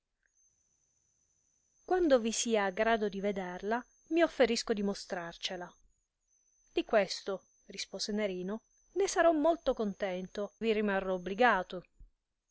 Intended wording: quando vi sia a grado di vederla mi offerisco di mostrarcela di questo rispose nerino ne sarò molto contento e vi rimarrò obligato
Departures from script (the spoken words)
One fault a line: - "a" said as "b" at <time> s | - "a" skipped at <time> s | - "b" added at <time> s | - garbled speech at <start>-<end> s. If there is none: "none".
- "e" skipped at 10.5 s